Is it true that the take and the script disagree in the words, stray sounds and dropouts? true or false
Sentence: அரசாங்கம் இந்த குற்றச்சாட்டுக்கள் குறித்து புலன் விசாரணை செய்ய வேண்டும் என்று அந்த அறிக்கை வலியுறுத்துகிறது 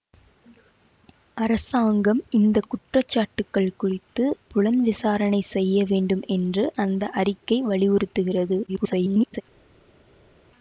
true